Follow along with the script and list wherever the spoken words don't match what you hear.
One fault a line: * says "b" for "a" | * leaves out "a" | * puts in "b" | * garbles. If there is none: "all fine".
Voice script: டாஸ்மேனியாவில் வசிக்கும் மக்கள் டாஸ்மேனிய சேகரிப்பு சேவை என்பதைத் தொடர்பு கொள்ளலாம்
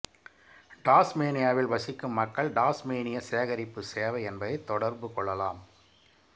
all fine